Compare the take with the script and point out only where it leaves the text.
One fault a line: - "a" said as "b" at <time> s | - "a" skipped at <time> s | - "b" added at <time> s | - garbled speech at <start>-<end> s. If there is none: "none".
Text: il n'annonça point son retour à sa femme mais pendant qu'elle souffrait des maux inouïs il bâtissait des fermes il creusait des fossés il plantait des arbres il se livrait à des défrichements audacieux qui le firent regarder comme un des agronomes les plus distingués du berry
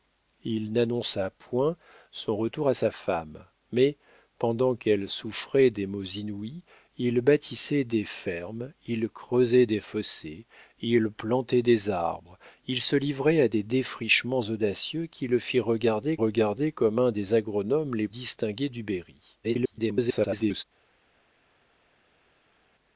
- "regarder" added at 16.2 s
- "plus" skipped at 18.1 s
- garbled speech at 19.4-20.6 s